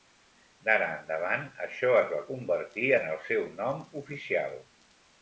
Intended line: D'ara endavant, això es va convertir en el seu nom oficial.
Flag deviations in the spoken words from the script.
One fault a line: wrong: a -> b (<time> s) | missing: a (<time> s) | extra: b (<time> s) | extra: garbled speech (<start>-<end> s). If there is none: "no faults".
no faults